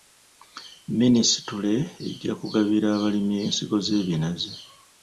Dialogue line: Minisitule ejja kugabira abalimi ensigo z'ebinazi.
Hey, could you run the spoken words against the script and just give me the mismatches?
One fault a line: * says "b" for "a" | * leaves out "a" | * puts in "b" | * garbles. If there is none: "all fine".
all fine